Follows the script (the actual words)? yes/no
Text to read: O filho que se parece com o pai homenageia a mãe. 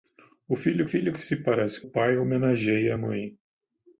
no